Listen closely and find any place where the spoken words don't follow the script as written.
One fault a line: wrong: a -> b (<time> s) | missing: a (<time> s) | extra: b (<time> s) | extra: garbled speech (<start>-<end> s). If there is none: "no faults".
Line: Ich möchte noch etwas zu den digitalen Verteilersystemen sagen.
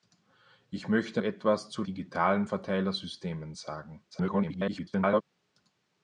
missing: noch (1.2 s)
missing: den (1.8 s)
extra: garbled speech (4.1-5.2 s)